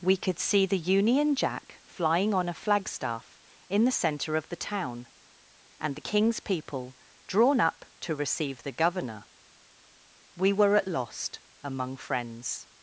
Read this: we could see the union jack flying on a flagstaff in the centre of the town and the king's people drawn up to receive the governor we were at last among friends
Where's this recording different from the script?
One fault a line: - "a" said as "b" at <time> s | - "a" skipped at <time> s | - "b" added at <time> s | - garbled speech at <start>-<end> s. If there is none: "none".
- "last" said as "lost" at 10.9 s